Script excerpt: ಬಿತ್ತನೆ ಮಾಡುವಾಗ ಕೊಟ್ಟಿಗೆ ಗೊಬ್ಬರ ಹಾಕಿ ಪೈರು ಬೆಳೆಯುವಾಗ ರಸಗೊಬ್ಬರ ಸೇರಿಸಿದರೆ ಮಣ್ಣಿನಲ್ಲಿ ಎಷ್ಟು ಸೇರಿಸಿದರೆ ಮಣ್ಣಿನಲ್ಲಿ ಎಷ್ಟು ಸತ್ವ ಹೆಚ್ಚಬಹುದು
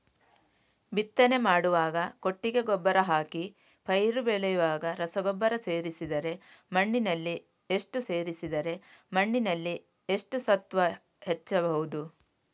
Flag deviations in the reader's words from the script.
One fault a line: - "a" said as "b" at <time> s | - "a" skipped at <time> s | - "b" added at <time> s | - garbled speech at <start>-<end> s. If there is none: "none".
none